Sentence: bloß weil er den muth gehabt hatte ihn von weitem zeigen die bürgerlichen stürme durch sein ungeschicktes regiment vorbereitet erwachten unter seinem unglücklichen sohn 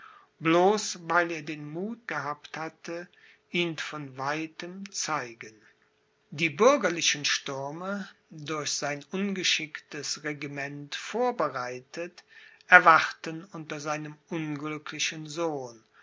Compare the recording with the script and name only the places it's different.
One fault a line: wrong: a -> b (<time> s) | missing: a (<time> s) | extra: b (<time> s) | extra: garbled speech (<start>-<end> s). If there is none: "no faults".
no faults